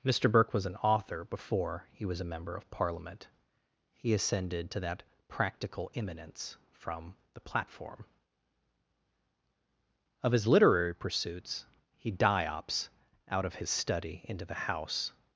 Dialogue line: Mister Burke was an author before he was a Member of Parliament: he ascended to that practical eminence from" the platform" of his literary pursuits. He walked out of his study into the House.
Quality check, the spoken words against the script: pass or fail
fail